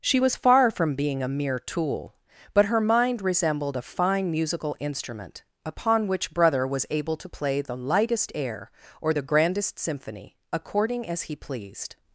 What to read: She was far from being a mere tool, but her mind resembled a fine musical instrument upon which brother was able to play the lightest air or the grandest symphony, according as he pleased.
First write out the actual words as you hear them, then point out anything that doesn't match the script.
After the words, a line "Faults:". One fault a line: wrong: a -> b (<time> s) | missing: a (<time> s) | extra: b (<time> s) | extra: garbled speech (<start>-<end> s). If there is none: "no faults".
She was far from being a mere tool, but her mind resembled a fine musical instrument upon which brother was able to play the lightest air or the grandest symphony, according as he pleased.
Faults:
no faults